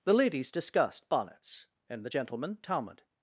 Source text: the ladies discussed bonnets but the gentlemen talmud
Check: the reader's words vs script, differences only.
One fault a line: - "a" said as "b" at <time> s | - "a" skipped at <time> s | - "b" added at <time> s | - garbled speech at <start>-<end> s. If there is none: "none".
- "but" said as "and" at 1.9 s